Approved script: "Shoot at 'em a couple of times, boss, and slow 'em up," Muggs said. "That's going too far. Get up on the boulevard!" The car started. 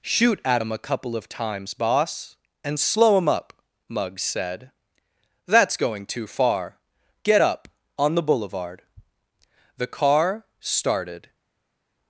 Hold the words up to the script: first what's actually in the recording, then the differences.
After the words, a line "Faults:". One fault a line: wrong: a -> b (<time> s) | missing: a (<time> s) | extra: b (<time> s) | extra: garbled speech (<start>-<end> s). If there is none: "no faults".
"Shoot at 'em a couple of times, boss, and slow 'em up," Muggs said. "That's going too far. Get up on the boulevard!" The car started.
Faults:
no faults